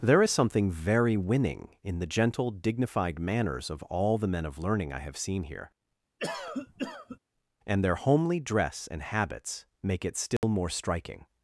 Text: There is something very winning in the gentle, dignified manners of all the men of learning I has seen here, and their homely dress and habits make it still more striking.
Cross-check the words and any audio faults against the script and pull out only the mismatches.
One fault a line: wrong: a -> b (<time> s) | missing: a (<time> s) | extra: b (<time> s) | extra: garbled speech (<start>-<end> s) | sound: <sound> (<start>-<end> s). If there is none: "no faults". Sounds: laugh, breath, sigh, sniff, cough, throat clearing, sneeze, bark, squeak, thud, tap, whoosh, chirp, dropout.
wrong: has -> have (5.0 s)
sound: cough (6.2-7.2 s)
sound: dropout (10.4-10.4 s)